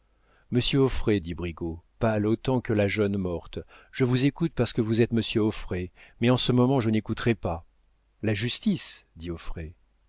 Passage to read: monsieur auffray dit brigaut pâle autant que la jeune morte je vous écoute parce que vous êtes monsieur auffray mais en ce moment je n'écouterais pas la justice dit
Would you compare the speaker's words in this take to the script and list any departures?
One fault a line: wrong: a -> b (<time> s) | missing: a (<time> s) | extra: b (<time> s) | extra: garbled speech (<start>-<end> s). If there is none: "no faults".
no faults